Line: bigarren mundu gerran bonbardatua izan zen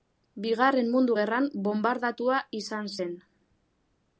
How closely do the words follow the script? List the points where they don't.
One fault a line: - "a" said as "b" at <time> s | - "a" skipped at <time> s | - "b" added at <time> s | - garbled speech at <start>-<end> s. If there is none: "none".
none